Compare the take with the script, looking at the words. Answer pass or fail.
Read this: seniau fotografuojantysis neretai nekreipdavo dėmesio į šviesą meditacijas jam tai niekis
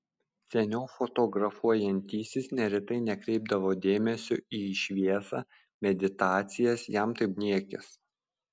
pass